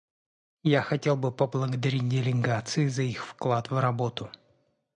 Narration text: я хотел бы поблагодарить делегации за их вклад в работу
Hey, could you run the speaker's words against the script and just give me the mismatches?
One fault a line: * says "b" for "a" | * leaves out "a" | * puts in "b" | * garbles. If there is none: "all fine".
all fine